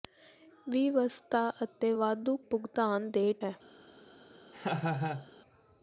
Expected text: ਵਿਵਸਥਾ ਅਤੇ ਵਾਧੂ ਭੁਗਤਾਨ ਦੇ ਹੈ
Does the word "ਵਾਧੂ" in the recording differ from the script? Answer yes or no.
no